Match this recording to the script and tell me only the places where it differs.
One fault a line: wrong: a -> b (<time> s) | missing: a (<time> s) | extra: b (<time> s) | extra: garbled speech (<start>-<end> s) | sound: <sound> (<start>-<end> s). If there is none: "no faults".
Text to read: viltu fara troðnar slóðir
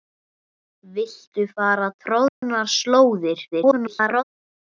sound: dropout (2.3-2.4 s)
extra: garbled speech (3.5-4.2 s)